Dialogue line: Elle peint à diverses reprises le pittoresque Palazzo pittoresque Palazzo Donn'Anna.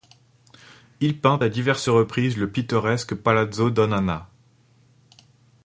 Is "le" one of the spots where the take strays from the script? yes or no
no